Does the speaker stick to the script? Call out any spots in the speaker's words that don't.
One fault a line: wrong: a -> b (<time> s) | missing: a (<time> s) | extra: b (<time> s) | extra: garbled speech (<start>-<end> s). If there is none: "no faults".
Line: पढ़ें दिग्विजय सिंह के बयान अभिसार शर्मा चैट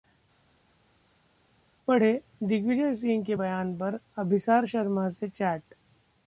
extra: पर (3.8 s)
extra: से (5.1 s)